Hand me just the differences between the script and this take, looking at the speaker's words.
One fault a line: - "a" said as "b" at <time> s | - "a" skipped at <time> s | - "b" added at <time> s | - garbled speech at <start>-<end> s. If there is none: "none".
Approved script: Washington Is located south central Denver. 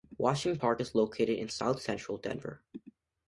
- "Park" added at 0.6 s
- "in" added at 1.4 s